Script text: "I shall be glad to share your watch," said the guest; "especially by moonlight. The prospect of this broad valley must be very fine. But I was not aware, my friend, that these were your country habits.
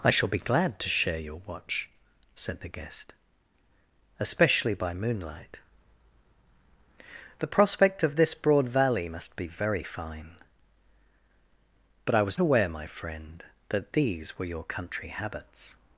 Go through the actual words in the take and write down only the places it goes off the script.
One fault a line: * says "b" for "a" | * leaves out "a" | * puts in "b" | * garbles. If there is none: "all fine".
* leaves out "not"